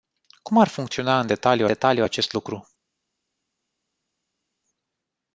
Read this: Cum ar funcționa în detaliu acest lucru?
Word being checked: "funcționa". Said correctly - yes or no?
yes